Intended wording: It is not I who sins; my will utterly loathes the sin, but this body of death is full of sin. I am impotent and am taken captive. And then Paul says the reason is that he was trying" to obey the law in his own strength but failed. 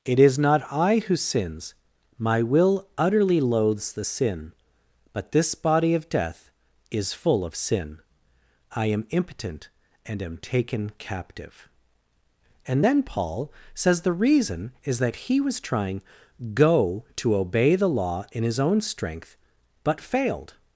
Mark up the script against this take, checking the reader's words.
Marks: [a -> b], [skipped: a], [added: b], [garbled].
It is not I who sins; my will utterly loathes the sin, but this body of death is full of sin. I am impotent and am taken captive. And then Paul says the reason is that he was trying" [added: go] to obey the law in his own strength but failed.